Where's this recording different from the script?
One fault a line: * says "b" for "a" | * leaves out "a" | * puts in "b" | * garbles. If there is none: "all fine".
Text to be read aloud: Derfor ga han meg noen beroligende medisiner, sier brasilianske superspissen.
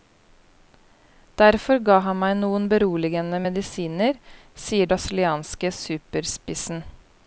all fine